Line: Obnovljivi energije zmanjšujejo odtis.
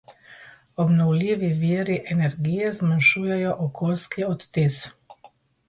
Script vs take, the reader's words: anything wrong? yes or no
yes